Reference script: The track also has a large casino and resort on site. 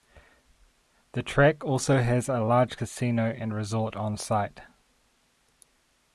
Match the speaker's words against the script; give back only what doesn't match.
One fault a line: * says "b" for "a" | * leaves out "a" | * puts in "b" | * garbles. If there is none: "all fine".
all fine